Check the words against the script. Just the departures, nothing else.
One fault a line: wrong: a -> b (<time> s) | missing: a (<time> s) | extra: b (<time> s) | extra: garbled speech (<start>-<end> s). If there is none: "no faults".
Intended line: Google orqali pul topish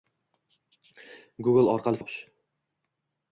missing: pul (2.0 s)